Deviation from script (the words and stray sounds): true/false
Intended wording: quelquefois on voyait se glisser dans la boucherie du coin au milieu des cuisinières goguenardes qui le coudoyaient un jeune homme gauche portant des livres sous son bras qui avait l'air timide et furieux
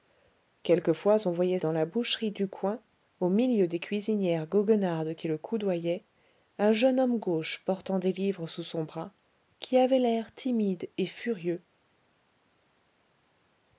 true